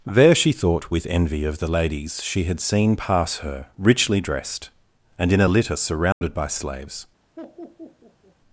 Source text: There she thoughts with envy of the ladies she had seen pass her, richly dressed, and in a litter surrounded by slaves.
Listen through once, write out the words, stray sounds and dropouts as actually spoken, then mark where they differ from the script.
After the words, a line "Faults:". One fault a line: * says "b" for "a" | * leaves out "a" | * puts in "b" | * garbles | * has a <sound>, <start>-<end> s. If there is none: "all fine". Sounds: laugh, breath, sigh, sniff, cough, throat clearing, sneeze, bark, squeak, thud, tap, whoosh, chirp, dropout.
There she thought with envy of the ladies she had seen pass her, richly dressed, and in a litter surrounded by slaves.
Faults:
* says "thought" for "thoughts"
* has a dropout, 6.1-6.2 s
* has a laugh, 7.4-8.4 s